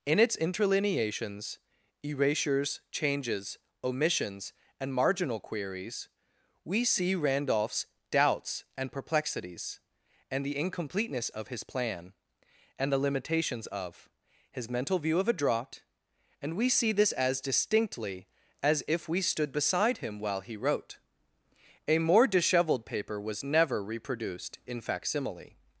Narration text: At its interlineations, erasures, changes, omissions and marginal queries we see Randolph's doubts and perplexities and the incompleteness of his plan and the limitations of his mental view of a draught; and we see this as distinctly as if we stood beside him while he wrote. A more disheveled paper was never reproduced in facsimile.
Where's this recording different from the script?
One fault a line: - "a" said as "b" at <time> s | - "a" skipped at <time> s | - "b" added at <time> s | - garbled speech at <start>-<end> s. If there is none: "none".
- "At" said as "In" at 0.1 s